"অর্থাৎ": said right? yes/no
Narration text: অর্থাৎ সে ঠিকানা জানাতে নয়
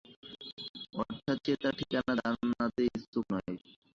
yes